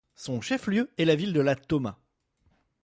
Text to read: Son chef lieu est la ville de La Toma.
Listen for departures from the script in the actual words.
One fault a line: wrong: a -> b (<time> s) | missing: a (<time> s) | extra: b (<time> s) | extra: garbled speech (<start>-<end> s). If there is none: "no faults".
no faults